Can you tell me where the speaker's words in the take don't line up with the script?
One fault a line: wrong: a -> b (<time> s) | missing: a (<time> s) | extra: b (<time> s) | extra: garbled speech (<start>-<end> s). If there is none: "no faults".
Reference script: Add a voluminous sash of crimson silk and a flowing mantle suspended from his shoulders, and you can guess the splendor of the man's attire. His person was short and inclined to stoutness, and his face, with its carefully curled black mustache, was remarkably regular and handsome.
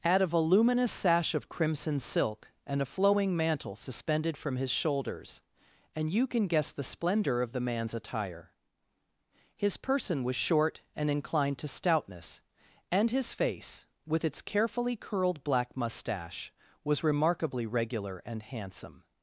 no faults